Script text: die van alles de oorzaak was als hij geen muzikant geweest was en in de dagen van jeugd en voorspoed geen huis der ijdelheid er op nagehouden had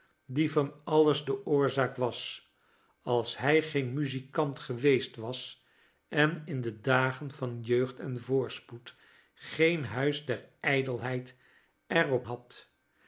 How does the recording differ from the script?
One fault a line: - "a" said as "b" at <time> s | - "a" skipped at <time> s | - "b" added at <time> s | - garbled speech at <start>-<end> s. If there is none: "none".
- "nagehouden" skipped at 12.3 s